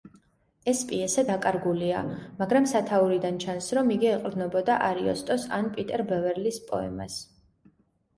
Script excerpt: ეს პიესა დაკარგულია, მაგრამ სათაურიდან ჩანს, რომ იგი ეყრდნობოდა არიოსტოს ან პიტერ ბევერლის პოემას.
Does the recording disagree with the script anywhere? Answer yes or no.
no